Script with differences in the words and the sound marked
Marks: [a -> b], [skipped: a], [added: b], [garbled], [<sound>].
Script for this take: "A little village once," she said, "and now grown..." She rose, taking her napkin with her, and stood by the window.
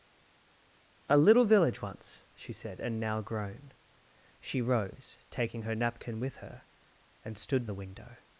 "A little village once," she said, "and now grown..." She rose, taking her napkin with her, and stood [skipped: by] the window.